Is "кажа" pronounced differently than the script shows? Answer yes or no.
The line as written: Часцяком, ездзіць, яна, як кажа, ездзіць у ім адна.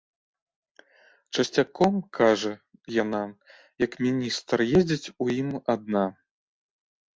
yes